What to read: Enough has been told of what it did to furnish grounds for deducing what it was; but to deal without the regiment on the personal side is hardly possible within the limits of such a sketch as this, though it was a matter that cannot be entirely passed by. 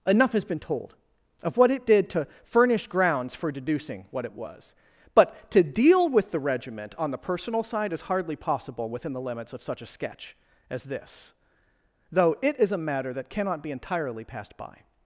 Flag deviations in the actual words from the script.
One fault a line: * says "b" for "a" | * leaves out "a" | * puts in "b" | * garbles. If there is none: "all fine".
* says "with" for "without"
* says "is" for "was"